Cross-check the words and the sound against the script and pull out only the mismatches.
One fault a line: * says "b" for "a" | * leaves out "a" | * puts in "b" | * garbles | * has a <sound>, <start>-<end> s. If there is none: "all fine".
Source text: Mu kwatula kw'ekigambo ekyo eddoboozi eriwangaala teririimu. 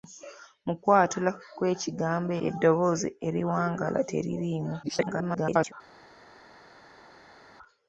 * leaves out "ekyo"
* garbles